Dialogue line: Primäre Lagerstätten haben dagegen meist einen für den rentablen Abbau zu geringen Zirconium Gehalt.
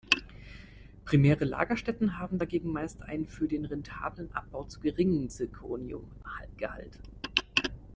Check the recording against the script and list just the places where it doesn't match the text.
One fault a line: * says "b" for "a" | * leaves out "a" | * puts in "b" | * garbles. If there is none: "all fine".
all fine